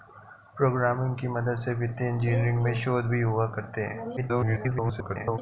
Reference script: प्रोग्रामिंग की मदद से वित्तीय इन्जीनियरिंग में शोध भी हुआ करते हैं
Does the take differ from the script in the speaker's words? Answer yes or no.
yes